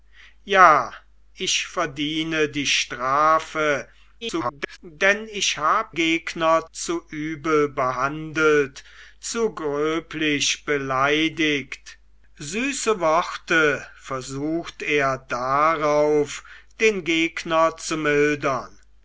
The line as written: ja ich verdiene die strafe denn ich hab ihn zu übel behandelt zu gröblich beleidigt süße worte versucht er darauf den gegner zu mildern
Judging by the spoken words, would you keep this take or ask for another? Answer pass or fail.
fail